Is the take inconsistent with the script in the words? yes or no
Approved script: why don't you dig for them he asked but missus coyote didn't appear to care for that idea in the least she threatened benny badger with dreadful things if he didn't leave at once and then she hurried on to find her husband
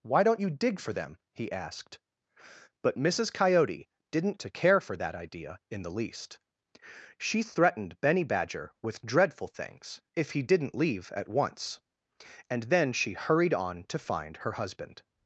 yes